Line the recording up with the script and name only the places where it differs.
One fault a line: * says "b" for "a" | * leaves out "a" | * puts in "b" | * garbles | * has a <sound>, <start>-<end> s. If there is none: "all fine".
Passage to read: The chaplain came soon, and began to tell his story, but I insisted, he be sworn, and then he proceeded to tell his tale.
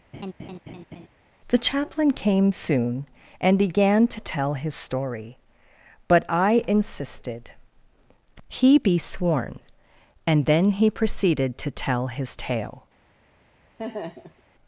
* has a laugh, 0.1-1.1 s
* has a laugh, 13.8-14.4 s